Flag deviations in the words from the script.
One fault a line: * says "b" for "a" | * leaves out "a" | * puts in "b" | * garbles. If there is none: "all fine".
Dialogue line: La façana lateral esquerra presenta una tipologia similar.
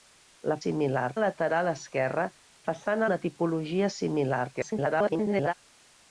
* says "similar" for "façana"
* says "façana" for "presenta"
* garbles